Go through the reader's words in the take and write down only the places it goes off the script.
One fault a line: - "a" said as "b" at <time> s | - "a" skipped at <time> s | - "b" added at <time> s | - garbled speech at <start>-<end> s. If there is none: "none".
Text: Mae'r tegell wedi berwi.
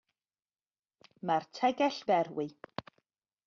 - "wedi" skipped at 2.0 s